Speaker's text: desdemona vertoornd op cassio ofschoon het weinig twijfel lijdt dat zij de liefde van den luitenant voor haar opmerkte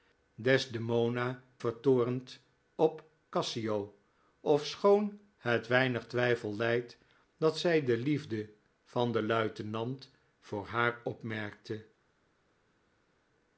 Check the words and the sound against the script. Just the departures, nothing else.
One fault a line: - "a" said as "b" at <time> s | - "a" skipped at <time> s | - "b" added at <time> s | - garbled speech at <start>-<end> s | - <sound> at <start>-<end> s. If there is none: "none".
none